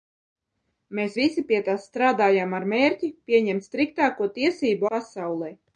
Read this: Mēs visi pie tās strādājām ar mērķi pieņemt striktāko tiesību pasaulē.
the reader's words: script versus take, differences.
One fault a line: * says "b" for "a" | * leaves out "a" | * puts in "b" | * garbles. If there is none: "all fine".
all fine